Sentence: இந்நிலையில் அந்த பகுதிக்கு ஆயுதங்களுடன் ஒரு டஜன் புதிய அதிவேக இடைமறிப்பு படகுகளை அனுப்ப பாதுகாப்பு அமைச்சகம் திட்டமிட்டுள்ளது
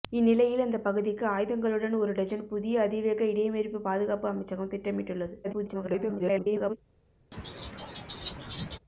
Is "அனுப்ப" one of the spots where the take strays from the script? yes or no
yes